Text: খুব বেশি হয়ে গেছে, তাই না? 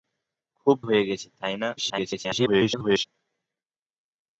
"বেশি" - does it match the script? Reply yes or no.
no